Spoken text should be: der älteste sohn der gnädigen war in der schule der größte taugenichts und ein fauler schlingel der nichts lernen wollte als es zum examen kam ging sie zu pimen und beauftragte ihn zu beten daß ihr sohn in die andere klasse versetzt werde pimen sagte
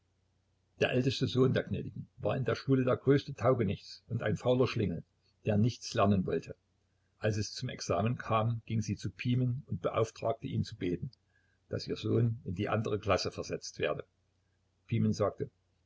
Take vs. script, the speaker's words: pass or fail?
pass